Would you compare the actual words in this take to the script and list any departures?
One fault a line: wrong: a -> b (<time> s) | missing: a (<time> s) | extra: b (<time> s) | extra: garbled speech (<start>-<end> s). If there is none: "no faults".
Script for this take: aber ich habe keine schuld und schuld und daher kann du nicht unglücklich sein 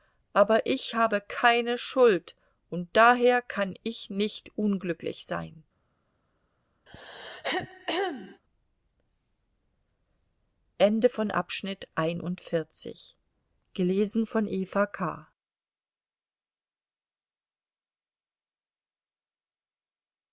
missing: schuld und (2.9 s)
wrong: du -> ich (3.8 s)